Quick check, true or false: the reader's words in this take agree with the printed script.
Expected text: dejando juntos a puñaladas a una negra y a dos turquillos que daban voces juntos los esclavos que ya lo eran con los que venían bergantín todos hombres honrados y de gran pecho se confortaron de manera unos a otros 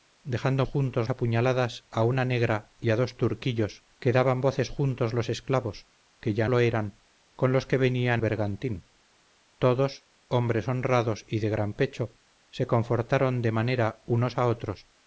true